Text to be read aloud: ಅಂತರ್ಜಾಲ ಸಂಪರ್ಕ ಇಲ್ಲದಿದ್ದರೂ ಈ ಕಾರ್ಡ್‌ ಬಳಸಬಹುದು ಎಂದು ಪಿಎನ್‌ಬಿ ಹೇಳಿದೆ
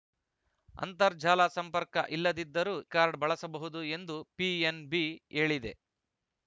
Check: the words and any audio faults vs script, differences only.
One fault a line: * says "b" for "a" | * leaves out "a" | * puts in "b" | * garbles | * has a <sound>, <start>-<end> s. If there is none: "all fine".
* leaves out "ಈ"